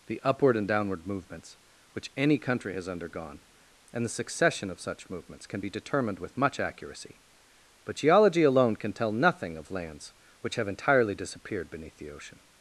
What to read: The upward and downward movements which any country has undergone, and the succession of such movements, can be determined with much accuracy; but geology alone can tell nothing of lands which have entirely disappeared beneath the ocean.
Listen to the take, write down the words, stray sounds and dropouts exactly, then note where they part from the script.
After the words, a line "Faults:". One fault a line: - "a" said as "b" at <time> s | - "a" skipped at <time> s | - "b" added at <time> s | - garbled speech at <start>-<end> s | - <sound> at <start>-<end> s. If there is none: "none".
The upward and downward movements which any country has undergone, and the succession of such movements, can be determined with much accuracy; but geology alone can tell nothing of lands which have entirely disappeared beneath the ocean.
Faults:
none